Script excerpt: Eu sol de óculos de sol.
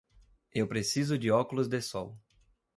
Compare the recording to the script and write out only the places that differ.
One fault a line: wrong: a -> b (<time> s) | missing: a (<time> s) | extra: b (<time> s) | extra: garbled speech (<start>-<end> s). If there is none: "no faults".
wrong: sol -> preciso (0.7 s)